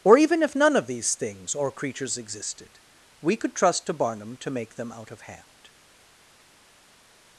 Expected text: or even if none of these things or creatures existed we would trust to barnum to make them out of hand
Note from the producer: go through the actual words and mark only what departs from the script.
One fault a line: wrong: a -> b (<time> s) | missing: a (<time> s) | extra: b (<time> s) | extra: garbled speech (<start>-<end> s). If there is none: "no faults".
wrong: would -> could (3.4 s)